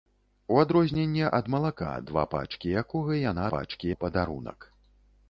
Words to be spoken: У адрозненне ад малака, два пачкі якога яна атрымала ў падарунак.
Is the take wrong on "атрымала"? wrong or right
wrong